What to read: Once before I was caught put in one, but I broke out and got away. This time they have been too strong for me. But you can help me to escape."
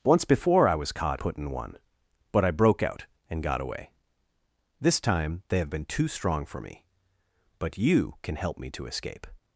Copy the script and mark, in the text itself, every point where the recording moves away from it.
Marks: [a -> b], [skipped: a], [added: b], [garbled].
Once before I was caught put in one, but I broke out and got away. This time they have been too strong for me. But you can help me to escape."